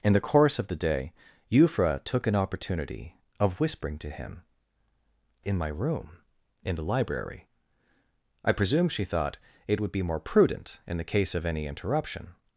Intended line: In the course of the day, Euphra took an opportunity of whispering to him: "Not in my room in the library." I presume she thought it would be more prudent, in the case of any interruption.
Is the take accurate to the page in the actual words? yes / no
no